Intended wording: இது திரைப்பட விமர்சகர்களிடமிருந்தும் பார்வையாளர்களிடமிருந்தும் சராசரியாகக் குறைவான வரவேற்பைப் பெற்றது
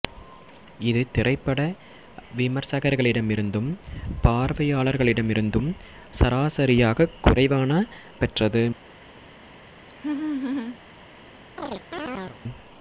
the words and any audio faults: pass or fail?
fail